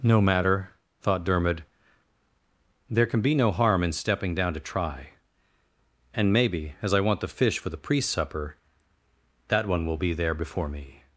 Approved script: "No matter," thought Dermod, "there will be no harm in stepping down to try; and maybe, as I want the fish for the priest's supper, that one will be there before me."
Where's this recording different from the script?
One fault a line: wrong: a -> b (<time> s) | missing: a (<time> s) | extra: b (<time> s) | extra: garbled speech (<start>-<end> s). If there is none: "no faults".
wrong: will -> can (3.0 s)